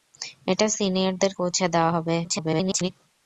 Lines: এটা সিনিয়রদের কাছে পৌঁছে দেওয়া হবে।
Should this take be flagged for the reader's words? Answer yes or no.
yes